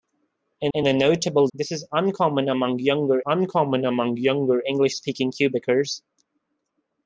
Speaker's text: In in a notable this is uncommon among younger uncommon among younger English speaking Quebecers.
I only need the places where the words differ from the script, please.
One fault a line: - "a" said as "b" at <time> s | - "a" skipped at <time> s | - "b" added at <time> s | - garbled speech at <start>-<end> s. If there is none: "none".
none